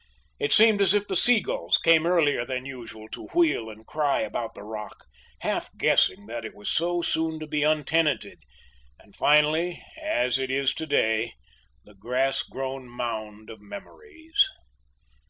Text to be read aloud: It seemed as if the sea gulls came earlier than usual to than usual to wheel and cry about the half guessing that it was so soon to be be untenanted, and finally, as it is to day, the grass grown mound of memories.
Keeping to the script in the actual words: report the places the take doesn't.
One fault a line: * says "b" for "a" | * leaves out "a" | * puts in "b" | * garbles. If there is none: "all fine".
* leaves out "than usual to"
* puts in "rock"
* leaves out "be"